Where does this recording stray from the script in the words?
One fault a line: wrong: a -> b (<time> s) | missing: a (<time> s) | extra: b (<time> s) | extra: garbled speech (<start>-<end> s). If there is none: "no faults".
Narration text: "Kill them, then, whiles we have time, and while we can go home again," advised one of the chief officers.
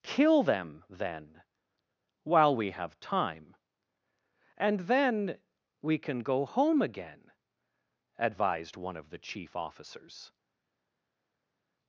wrong: whiles -> while (2.2 s)
wrong: while -> then (4.8 s)